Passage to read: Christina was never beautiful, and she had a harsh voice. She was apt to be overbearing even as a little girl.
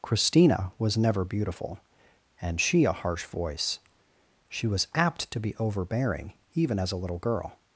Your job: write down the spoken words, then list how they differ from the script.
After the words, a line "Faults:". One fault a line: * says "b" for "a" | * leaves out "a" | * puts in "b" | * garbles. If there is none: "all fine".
Christina was never beautiful, and she a harsh voice. She was apt to be overbearing even as a little girl.
Faults:
* leaves out "had"